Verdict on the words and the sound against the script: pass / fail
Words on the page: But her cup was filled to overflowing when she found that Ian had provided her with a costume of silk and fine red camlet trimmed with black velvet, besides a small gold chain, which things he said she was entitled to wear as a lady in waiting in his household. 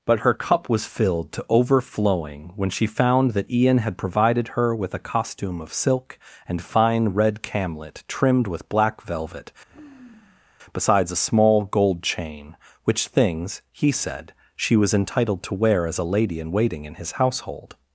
fail